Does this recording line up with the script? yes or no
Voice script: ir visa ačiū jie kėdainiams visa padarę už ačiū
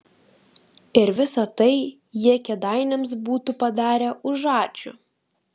no